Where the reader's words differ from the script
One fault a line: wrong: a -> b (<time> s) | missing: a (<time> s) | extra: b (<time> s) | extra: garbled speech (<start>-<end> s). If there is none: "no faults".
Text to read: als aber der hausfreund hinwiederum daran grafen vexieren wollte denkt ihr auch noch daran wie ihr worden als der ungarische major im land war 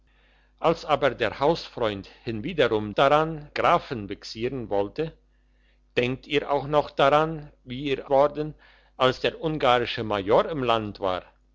no faults